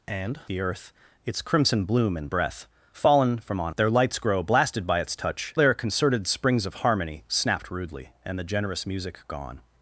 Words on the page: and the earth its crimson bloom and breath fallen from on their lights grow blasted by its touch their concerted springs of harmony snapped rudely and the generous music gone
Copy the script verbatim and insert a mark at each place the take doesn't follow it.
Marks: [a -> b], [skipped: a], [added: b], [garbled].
and the earth its crimson bloom and breath fallen from on their lights grow blasted by its touch their concerted springs of harmony snapped rudely and the generous music gone